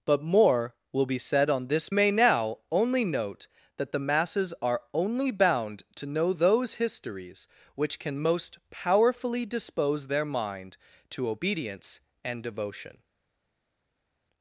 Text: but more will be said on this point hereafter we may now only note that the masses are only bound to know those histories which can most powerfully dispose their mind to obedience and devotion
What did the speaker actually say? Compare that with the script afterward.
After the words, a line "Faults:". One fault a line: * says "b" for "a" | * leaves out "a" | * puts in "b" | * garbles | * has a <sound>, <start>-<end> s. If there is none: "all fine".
but more will be said on this may now only note that the masses are only bound to know those histories which can most powerfully dispose their mind to obedience and devotion
Faults:
* leaves out "point hereafter we"